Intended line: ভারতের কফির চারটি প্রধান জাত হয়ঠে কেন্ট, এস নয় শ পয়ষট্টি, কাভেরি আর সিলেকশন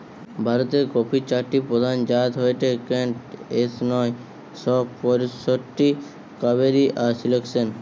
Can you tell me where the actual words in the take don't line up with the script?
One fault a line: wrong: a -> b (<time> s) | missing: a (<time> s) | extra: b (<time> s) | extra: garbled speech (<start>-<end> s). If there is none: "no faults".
no faults